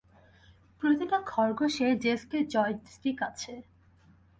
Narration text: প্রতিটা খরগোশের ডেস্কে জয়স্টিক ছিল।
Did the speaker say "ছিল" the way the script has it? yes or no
no